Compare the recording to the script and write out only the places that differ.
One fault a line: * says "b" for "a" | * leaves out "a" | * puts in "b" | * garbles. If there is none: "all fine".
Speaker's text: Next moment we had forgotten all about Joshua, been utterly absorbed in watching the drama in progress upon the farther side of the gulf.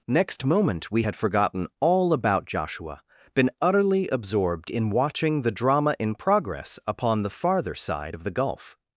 all fine